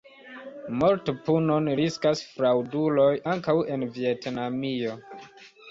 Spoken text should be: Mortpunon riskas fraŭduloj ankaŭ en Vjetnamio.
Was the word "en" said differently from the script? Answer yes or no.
no